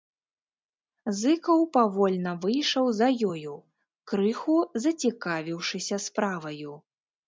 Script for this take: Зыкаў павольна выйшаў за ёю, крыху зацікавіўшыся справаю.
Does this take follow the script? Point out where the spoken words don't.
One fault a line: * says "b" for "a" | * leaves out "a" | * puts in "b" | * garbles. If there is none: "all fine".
all fine